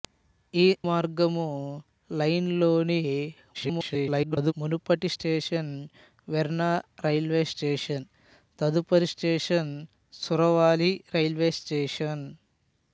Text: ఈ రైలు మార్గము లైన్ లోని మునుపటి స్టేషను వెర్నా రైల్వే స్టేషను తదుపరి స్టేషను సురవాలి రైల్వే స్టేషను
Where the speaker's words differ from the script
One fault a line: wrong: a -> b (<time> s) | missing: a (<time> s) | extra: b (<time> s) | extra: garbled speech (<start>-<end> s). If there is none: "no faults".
missing: రైలు (0.6 s)
extra: garbled speech (3.5-4.5 s)